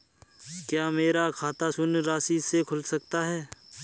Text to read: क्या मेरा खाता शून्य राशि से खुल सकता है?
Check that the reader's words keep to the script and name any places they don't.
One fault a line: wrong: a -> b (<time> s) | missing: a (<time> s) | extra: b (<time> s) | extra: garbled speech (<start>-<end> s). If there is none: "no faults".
no faults